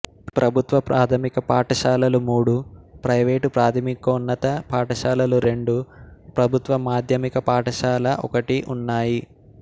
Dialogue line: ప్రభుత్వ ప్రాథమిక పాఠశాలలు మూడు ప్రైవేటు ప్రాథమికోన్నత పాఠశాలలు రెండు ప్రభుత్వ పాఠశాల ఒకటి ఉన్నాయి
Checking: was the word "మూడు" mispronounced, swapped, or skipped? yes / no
no